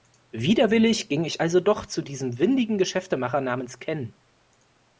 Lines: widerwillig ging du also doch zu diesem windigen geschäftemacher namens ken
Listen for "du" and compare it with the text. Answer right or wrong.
wrong